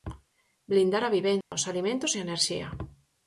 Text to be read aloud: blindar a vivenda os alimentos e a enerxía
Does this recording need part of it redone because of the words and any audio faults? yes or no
yes